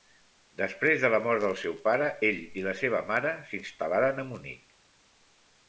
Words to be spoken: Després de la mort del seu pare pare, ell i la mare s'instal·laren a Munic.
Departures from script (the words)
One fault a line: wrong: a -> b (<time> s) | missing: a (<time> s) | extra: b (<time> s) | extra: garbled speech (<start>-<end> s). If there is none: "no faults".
missing: pare (2.1 s)
extra: seva (2.8 s)